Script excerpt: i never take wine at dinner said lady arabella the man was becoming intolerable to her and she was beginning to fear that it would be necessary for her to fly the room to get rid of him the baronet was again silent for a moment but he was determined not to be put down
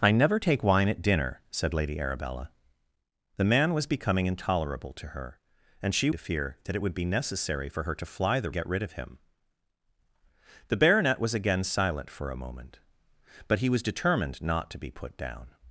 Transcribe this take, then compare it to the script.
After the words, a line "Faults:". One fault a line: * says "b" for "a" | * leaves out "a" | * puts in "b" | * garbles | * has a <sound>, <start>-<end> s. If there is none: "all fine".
i never take wine at dinner said lady arabella the man was becoming intolerable to her and she to fear that it would be necessary for her to fly the get rid of him the baronet was again silent for a moment but he was determined not to be put down
Faults:
* leaves out "was beginning"
* leaves out "room to"